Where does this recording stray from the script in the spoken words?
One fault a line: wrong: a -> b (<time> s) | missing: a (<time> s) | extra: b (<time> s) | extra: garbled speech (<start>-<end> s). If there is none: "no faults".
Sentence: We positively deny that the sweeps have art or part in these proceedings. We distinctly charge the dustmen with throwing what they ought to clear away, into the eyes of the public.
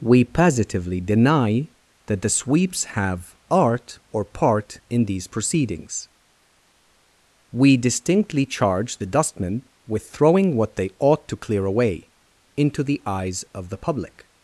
no faults